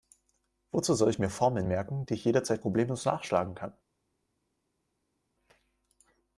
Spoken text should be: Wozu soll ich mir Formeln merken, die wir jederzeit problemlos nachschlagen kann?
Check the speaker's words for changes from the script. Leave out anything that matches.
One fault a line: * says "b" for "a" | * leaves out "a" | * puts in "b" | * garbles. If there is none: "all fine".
* says "ich" for "wir"